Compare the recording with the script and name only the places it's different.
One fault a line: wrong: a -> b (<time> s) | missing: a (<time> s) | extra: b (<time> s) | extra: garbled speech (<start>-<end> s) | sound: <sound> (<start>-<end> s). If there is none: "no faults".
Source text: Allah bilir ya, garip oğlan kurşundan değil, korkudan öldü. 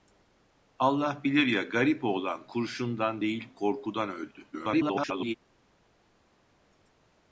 extra: garbled speech (4.5-5.3 s)